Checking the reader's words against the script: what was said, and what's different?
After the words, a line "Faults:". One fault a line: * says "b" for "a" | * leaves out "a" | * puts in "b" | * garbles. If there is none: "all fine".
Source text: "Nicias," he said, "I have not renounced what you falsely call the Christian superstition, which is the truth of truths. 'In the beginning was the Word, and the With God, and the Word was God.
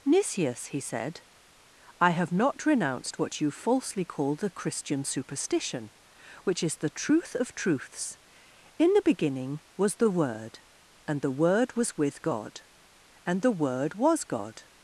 "Nicias," he said, "I have not renounced what you falsely call the Christian superstition, which is the truth of truths. 'In the beginning was the Word, and the Word was with God, and the Word was God.
Faults:
* puts in "Word was"